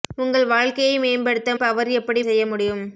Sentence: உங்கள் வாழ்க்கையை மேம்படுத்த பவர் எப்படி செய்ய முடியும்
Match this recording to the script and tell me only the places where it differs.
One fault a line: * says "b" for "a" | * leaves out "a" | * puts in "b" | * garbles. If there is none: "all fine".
all fine